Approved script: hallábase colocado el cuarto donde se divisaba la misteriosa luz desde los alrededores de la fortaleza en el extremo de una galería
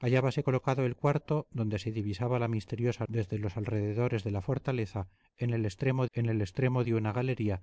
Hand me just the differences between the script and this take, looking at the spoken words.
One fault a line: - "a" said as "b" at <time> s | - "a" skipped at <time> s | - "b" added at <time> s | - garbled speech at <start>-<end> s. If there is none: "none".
- "luz" skipped at 3.0 s
- "en el extremo" added at 6.1 s